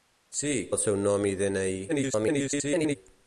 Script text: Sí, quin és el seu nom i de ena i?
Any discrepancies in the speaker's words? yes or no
yes